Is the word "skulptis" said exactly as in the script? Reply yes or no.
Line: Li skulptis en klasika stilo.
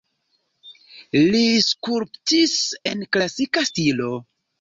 yes